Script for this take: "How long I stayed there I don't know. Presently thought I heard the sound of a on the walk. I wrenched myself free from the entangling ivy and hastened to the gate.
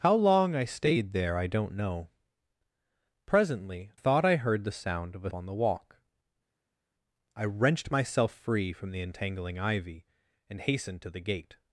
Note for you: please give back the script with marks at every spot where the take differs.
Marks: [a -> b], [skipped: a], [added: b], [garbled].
"How long I stayed there I don't know. Presently thought I heard the sound of a on the walk. I wrenched myself free from the entangling ivy and hastened to the gate.